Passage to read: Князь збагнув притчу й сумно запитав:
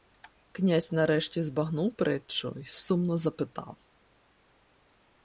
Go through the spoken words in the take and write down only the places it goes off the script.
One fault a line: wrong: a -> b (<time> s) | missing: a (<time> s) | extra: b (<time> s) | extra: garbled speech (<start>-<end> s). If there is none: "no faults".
extra: нарешті (0.9 s)